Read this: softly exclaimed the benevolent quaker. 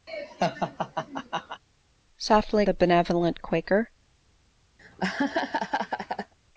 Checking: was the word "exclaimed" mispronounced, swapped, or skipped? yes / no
yes